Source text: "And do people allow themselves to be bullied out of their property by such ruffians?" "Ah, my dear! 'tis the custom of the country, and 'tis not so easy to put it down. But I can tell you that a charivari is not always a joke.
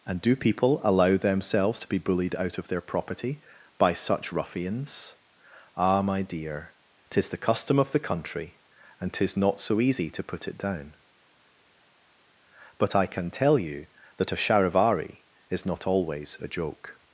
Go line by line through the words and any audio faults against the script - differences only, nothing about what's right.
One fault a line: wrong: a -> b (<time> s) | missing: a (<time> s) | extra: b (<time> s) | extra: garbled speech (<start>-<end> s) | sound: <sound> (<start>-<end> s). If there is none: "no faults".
no faults